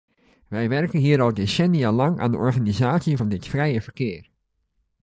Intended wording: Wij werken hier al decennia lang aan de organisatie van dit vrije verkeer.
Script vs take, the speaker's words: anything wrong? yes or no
no